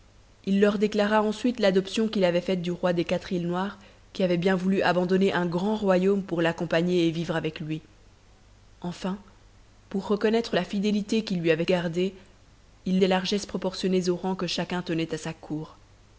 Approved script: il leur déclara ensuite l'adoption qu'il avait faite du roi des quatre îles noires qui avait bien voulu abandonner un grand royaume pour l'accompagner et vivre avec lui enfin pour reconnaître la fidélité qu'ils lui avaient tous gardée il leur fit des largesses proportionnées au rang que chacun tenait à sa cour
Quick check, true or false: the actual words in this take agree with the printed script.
false